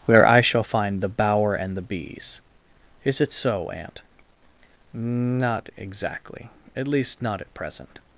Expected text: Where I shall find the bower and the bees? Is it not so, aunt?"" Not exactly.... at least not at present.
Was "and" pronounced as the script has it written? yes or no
yes